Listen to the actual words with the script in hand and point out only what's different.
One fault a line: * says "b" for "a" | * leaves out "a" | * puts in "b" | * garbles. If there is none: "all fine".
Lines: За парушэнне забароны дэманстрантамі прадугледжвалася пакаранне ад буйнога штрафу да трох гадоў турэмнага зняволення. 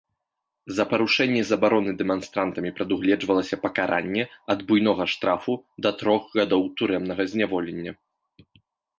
all fine